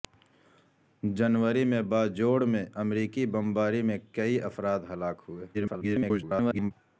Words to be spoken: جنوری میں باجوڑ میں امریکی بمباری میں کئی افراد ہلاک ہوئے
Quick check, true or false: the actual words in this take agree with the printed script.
false